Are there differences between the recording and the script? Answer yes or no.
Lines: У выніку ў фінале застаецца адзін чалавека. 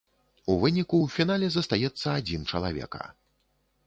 no